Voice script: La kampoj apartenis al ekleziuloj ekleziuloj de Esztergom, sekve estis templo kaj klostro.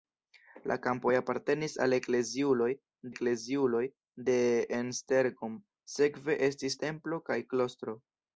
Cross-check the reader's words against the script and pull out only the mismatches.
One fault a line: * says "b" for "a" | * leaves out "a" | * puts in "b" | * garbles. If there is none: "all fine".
all fine